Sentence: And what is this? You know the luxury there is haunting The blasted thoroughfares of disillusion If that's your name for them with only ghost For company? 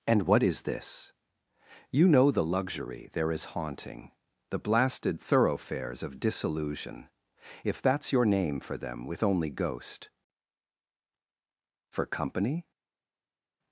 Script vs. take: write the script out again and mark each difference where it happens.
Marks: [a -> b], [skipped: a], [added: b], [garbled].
And what is this? You know the luxury there is haunting The blasted thoroughfares of disillusion If that's your name for them with only ghost For company?